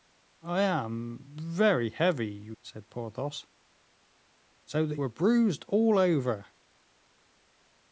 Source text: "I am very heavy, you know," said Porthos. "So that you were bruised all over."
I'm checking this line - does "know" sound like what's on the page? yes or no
no